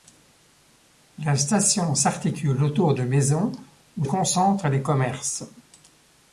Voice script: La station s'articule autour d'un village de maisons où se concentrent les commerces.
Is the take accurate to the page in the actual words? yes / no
no